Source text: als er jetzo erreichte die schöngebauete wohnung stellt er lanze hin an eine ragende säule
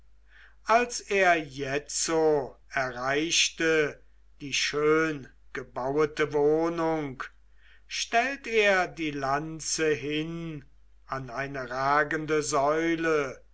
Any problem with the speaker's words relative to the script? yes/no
yes